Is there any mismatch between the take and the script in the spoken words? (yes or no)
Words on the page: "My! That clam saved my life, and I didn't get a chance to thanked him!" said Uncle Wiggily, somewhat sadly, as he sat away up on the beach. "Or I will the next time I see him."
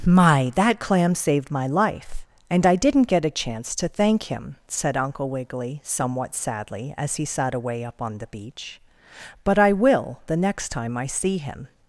yes